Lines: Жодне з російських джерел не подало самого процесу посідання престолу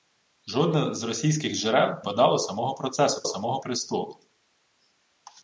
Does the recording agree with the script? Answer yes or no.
no